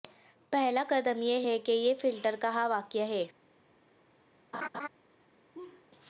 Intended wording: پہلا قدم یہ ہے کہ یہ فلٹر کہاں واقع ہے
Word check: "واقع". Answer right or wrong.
right